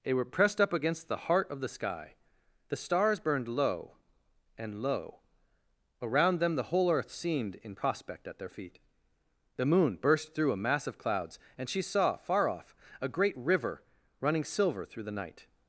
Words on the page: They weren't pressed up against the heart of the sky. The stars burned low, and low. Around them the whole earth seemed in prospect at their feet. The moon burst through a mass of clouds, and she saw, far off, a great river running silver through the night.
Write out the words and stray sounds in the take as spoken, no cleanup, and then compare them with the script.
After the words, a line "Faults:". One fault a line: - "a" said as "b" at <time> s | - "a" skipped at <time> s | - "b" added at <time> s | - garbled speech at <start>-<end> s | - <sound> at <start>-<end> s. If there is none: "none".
They were pressed up against the heart of the sky. The stars burned low, and low. Around them the whole earth seemed in prospect at their feet. The moon burst through a mass of clouds, and she saw, far off, a great river running silver through the night.
Faults:
- "weren't" said as "were" at 0.1 s